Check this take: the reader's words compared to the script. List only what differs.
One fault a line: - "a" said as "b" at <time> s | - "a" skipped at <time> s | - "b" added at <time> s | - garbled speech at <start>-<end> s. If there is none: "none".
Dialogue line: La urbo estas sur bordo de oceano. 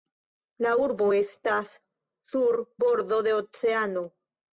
none